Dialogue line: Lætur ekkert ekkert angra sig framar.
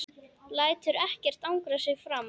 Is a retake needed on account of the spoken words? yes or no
yes